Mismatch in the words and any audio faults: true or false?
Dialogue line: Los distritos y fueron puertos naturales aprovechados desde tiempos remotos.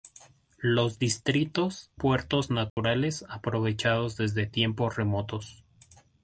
true